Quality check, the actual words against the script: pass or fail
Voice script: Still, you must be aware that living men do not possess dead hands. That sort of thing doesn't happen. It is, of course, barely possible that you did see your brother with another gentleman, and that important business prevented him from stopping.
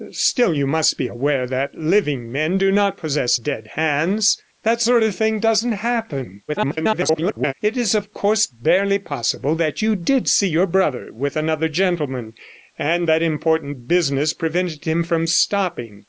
fail